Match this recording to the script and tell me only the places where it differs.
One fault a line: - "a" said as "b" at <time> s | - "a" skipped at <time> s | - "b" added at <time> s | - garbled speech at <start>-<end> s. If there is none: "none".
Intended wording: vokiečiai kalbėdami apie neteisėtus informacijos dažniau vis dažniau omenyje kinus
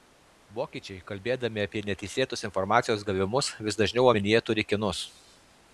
- "dažniau" said as "gavimus" at 3.1 s
- "turi" added at 4.5 s